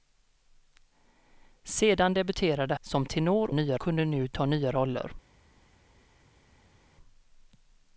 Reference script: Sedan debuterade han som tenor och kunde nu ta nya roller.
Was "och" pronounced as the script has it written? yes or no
no